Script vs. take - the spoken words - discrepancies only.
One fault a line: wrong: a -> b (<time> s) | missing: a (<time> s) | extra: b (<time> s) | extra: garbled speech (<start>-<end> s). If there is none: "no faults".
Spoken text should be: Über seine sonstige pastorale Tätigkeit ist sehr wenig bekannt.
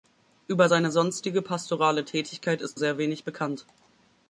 no faults